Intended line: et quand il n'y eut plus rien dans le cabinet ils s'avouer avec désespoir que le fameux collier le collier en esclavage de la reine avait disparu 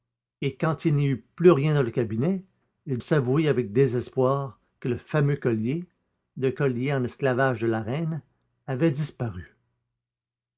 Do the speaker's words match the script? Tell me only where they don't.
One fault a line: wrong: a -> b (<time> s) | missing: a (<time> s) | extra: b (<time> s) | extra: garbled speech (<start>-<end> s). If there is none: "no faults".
no faults